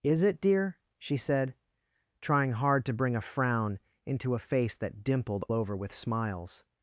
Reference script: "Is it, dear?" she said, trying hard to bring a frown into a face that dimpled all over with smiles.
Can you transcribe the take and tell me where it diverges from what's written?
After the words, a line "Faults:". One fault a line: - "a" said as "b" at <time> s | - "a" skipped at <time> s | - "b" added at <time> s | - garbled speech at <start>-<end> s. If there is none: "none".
"Is it, dear?" she said, trying hard to bring a frown into a face that dimpled over with smiles.
Faults:
- "all" skipped at 5.5 s